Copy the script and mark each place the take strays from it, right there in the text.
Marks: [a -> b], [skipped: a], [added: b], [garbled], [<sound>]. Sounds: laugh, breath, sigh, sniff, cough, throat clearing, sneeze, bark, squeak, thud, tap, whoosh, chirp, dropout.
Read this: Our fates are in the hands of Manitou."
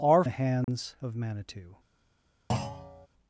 Our [skipped: fates are in] the hands [dropout] of Manitou." [thud]